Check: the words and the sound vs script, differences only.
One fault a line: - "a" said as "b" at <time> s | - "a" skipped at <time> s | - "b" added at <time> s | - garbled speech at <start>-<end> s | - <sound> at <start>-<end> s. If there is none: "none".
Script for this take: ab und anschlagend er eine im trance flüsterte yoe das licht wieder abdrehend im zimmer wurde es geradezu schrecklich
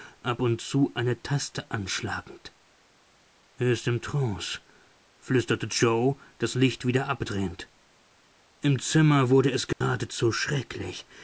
- "zu eine taste" added at 0.6 s
- "eine" said as "ist" at 3.7 s
- dropout at 9.7-9.8 s